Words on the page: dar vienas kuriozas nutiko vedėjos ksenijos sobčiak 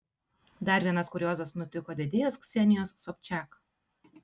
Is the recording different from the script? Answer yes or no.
no